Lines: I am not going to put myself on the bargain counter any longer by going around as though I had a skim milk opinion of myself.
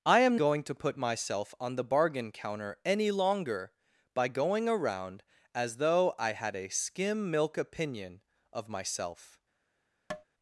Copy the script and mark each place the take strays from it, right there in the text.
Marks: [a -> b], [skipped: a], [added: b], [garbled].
I am [skipped: not] going to put myself on the bargain counter any longer by going around as though I had a skim milk opinion of myself.